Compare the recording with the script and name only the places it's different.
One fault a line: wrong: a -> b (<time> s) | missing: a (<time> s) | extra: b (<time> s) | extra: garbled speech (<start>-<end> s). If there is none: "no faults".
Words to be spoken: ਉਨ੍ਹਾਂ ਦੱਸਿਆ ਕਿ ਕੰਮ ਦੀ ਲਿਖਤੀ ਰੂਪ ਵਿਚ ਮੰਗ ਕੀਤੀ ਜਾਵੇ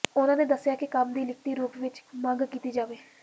no faults